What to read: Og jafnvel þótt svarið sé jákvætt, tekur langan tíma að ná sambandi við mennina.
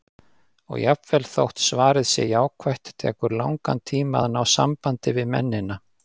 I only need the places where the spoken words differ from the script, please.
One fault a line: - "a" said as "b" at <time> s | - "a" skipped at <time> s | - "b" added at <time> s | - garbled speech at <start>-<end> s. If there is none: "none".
none